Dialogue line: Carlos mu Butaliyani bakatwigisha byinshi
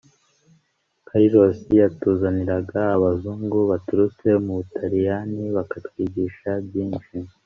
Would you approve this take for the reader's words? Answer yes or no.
no